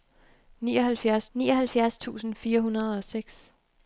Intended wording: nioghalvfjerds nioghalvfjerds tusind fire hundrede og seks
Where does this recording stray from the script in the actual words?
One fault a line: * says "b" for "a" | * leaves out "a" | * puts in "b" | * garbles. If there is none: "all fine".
all fine